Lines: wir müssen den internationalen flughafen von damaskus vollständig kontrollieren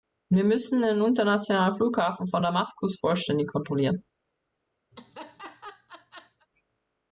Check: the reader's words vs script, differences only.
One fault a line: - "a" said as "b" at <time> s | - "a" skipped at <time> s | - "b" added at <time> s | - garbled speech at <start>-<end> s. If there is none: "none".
none